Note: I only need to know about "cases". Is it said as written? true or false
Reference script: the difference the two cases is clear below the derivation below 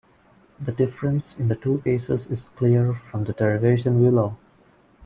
true